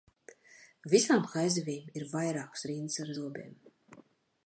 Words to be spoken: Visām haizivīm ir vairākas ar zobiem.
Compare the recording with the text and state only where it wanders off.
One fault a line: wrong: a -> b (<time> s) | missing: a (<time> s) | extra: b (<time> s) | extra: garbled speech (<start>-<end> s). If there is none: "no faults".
extra: rindas (2.7 s)